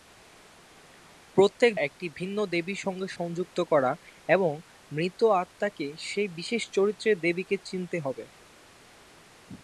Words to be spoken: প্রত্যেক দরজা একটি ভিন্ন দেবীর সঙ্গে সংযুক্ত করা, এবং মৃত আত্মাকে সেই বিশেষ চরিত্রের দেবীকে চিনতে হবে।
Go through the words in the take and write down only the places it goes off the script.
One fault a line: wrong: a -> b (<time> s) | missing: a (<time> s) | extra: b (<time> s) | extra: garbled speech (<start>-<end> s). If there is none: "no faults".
missing: দরজা (1.7 s)